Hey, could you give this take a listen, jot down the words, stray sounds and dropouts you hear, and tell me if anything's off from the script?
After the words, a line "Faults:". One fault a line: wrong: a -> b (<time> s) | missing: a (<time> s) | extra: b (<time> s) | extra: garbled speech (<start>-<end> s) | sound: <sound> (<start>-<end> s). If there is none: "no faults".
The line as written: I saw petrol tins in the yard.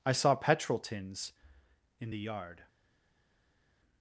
I saw petrol tins in the yard.
Faults:
no faults